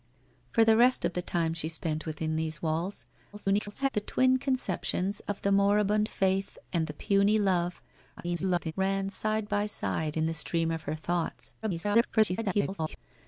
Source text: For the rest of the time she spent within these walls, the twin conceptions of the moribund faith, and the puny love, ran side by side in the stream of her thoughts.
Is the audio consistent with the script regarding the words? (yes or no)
no